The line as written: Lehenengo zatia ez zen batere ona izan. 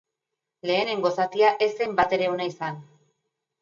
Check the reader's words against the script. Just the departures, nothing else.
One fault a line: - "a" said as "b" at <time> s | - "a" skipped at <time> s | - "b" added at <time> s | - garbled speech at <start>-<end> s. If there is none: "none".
none